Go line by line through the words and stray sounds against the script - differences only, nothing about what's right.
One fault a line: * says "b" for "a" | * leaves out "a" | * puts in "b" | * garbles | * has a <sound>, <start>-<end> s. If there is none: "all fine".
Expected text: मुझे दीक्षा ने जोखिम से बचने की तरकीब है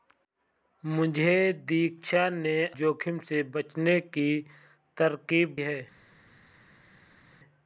all fine